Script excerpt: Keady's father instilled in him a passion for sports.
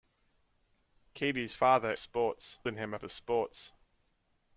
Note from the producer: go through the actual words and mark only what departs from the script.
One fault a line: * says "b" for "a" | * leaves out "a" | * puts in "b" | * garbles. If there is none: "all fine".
* says "sports" for "instilled"
* leaves out "passion"